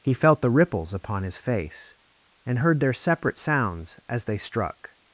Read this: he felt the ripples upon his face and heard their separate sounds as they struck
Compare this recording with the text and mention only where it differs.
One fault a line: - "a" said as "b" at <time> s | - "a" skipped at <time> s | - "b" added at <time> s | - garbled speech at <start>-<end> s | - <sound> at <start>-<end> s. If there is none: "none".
none